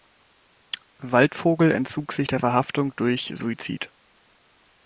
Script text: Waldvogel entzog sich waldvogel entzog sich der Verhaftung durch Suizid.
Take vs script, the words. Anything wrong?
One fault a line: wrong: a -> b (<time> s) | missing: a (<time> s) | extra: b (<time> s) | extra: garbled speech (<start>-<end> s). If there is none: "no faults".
missing: waldvogel entzog sich (2.3 s)